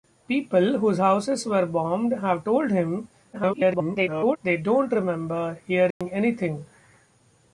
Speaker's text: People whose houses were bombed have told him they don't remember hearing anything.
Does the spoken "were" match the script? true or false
true